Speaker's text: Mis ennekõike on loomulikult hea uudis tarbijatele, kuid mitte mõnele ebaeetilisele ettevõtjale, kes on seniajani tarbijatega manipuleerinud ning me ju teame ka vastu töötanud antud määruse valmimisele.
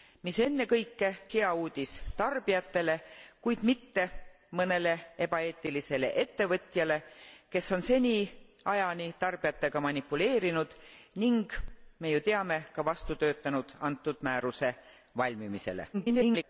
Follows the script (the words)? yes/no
no